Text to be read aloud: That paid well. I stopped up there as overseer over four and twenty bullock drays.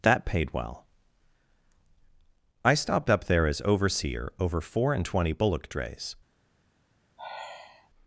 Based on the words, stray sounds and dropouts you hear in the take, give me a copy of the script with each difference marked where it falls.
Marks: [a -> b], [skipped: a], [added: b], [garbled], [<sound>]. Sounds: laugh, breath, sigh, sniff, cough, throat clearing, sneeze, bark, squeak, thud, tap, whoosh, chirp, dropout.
That paid well. I stopped up there as overseer over four and twenty bullock drays. [sigh]